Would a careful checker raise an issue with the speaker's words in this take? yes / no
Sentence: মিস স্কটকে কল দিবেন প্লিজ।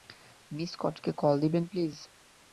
no